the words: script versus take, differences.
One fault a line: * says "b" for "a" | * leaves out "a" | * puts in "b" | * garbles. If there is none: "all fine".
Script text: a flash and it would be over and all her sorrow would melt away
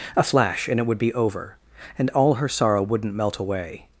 * says "wouldn't" for "would"